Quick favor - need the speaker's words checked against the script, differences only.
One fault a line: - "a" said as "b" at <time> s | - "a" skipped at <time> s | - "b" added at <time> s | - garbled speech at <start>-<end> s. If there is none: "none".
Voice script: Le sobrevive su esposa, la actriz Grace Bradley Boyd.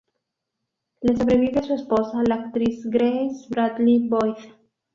none